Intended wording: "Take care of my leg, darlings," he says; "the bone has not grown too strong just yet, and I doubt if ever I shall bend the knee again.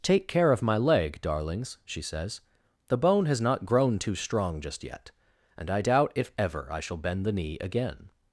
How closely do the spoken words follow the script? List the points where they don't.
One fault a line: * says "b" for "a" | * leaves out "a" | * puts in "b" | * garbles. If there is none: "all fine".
* says "she" for "he"